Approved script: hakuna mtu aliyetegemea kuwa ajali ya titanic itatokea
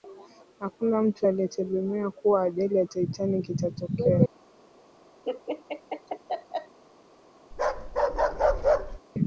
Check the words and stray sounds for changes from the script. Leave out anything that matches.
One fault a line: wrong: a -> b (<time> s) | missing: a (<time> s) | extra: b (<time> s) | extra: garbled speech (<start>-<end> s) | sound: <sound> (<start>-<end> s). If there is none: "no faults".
sound: laugh (5.2-6.8 s)
sound: bark (7.5-9.0 s)